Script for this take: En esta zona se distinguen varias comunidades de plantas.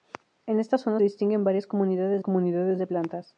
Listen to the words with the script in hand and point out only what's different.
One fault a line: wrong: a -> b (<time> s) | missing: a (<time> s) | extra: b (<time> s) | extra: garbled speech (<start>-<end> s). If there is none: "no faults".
missing: se (1.0 s)
extra: comunidades (2.2 s)